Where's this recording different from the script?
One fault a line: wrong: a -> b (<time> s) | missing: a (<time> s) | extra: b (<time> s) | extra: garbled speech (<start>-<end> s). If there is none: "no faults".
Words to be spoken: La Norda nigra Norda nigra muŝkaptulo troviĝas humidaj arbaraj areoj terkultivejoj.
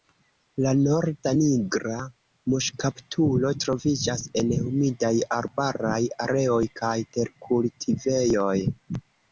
missing: Norda nigra (2.0 s)
extra: en (4.4 s)
extra: kaj (6.8 s)